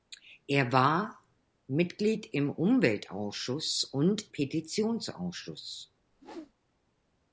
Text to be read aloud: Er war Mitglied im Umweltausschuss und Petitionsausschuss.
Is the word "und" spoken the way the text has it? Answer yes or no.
yes